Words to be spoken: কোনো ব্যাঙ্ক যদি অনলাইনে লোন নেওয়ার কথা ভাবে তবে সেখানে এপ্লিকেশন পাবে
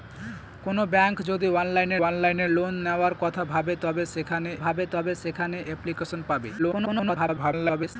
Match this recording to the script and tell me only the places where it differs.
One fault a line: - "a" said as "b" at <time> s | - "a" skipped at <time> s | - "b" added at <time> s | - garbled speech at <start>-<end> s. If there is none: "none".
- "অনলাইনে" added at 2.0 s
- "ভাবে তবে সেখানে" added at 4.6 s
- garbled speech at 6.6-8.0 s